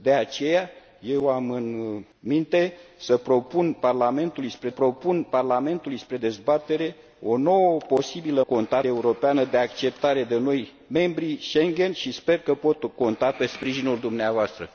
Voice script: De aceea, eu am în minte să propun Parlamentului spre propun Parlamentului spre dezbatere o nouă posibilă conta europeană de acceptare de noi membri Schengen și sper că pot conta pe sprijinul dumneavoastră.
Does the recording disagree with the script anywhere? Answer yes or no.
no